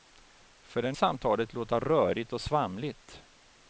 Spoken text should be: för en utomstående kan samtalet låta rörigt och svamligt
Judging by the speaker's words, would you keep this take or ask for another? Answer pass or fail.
fail